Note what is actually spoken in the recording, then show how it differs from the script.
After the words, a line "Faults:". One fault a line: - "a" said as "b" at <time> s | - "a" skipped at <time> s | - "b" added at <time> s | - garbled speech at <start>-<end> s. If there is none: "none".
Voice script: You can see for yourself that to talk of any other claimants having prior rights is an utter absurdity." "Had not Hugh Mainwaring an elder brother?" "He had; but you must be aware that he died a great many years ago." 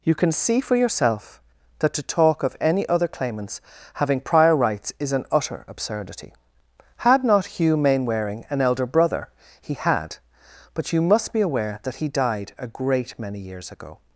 You can see for yourself that to talk of any other claimants having prior rights is an utter absurdity." "Had not Hugh Mainwaring an elder brother?" "He had; but you must be aware that he died a great many years ago."
Faults:
none